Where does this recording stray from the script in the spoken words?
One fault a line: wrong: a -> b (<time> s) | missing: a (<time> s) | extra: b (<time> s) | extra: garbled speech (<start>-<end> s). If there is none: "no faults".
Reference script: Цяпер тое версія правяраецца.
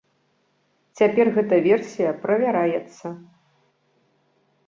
wrong: тое -> гэта (1.4 s)